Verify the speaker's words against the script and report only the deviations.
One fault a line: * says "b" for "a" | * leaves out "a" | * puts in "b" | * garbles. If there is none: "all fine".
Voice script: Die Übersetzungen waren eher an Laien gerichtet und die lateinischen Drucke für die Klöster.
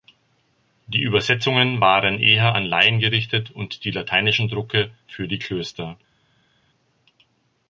all fine